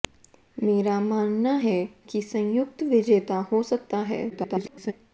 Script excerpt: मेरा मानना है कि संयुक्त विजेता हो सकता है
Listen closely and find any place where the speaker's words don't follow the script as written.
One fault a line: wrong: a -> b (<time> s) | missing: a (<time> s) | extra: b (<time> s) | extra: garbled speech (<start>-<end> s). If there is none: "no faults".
extra: garbled speech (4.3-4.9 s)